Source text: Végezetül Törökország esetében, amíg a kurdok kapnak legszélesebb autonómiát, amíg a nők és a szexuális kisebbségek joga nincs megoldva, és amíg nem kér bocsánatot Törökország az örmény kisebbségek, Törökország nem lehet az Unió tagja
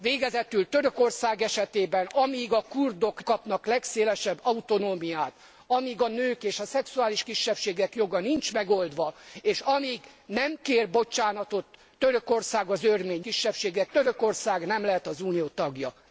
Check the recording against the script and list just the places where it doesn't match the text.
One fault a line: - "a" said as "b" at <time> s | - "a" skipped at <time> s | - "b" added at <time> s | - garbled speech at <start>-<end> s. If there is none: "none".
none